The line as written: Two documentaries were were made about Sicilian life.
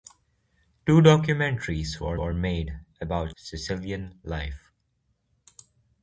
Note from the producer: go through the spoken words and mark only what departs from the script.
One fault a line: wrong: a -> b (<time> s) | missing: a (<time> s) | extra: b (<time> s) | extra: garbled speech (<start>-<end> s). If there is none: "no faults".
no faults